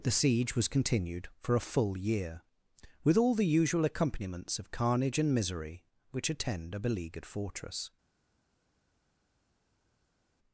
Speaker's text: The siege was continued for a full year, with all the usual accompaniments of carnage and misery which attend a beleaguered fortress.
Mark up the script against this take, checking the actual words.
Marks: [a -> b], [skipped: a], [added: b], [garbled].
The siege was continued for a full year, with all the usual accompaniments of carnage and misery which attend a beleaguered fortress.